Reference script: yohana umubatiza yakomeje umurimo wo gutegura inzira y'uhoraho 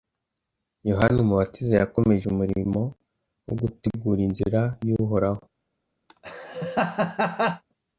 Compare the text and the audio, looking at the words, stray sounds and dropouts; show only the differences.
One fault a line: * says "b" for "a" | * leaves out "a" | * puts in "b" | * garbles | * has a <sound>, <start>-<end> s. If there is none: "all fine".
* has a laugh, 6.1-7.6 s